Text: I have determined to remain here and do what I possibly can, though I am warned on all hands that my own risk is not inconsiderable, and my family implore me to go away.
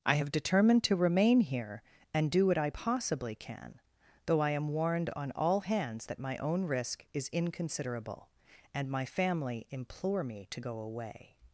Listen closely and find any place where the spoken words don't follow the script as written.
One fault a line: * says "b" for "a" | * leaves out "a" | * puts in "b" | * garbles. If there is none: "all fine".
* leaves out "not"